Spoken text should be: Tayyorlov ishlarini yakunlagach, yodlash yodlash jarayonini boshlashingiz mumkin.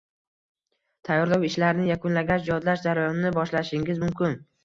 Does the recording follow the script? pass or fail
fail